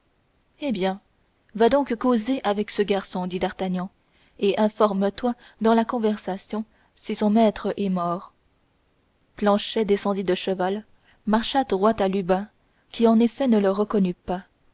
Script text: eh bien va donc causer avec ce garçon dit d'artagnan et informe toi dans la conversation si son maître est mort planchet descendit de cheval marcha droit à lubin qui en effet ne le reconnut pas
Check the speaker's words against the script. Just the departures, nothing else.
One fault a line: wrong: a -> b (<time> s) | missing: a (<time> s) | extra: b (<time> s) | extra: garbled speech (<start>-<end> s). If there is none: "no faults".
no faults